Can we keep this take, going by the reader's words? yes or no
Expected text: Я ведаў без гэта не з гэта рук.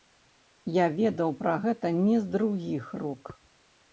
no